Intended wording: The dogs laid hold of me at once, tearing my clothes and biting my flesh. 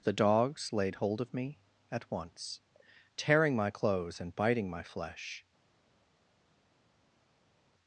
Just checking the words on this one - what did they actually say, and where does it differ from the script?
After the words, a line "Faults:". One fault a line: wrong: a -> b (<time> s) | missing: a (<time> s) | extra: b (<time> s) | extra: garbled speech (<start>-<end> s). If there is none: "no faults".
The dogs laid hold of me at once, tearing my clothes and biting my flesh.
Faults:
no faults